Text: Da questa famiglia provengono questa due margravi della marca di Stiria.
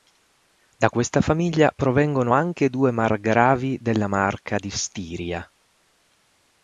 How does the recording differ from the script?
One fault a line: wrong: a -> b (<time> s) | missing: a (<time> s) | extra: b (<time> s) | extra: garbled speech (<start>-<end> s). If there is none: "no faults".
wrong: questa -> anche (2.3 s)